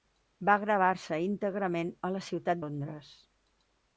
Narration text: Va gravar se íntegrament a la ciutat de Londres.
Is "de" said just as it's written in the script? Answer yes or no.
no